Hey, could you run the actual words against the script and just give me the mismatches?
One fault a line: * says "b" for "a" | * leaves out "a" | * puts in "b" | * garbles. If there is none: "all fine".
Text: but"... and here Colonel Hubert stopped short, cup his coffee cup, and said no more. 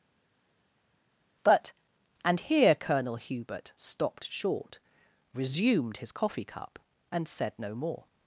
* says "resumed" for "cup"